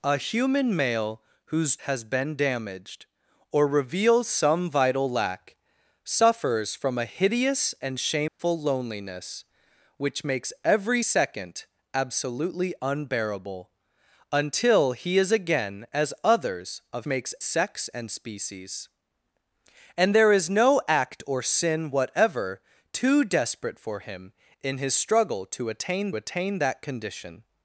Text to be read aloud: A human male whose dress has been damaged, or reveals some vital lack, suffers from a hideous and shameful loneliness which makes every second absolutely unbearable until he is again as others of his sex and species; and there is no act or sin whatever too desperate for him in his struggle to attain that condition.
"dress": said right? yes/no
no